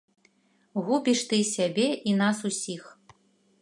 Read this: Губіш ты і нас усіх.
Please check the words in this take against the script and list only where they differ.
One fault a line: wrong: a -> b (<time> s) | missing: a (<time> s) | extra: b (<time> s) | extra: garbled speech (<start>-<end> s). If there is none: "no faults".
extra: сябе (1.5 s)